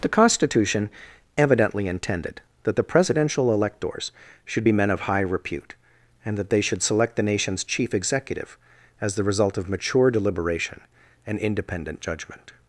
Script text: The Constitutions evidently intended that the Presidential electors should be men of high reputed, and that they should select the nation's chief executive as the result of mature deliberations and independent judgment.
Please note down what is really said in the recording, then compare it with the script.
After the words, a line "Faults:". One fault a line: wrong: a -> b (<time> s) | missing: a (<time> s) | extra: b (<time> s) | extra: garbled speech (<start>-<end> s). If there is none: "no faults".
The Constitution evidently intended that the Presidential electors should be men of high repute, and that they should select the nation's chief executive as the result of mature deliberation and independent judgment.
Faults:
wrong: Constitutions -> Constitution (0.1 s)
wrong: reputed -> repute (5.2 s)
wrong: deliberations -> deliberation (10.1 s)